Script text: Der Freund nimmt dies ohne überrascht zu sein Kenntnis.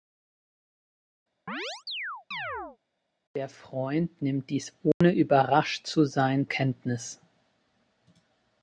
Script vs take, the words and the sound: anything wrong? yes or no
yes